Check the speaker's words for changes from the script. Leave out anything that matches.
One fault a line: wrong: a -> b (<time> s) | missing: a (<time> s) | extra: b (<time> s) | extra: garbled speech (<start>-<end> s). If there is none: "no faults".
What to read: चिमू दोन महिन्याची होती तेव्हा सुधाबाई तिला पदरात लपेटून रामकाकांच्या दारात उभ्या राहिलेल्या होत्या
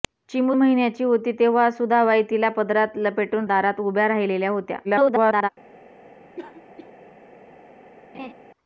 missing: दोन (0.5 s)
missing: रामकाकांच्या (3.4 s)
extra: garbled speech (4.8-5.5 s)